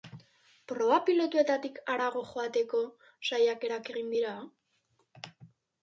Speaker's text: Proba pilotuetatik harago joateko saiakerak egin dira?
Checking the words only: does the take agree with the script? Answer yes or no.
yes